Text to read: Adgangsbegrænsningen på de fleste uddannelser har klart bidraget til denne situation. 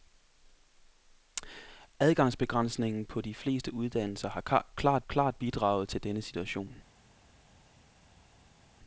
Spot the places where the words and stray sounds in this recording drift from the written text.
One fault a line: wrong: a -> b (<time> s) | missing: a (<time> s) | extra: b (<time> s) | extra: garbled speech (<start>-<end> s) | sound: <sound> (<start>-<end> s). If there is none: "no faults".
extra: klart (5.1 s)